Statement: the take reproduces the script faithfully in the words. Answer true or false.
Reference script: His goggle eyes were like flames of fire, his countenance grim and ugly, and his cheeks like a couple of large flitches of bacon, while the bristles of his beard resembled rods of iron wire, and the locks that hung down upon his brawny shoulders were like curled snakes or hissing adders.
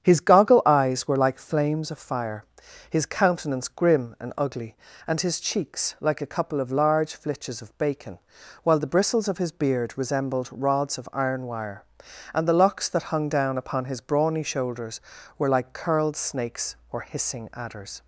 true